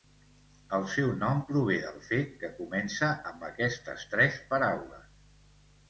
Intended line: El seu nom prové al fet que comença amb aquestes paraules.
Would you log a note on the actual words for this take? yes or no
yes